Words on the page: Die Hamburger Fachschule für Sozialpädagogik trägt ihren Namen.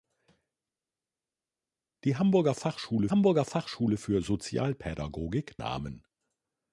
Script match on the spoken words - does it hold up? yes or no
no